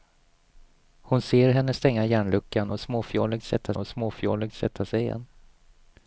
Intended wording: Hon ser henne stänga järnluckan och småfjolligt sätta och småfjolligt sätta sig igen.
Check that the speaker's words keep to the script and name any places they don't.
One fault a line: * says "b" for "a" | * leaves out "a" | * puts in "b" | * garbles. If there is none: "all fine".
all fine